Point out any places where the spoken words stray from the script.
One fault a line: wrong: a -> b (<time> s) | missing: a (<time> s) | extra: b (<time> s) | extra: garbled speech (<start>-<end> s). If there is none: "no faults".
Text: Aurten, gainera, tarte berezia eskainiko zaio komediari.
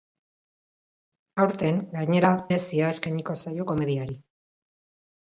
missing: tarte (2.3 s)